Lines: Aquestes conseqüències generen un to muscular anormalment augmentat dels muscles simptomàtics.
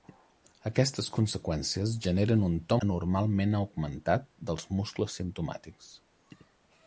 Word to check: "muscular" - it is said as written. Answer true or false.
false